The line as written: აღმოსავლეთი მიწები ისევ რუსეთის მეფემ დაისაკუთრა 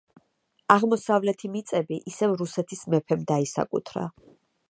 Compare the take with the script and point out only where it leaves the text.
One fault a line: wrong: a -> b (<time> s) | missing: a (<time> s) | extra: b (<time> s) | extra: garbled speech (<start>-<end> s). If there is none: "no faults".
no faults